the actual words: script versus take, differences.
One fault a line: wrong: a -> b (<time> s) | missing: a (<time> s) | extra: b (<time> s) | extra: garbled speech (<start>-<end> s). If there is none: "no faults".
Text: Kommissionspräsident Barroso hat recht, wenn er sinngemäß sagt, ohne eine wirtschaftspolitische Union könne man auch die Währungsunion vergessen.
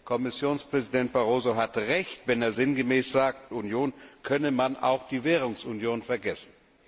missing: ohne eine wirtschaftspolitische (3.5 s)